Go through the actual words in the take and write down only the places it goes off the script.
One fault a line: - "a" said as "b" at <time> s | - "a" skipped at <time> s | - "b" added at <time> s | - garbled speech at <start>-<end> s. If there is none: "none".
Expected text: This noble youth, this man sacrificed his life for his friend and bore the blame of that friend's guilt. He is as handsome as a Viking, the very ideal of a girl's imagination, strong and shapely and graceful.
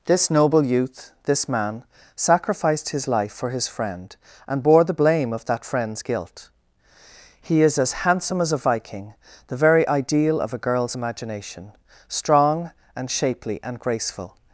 none